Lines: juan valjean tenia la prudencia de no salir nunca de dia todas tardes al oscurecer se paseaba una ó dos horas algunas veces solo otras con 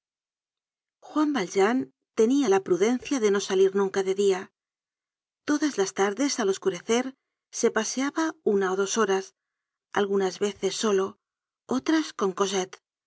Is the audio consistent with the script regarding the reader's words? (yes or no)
no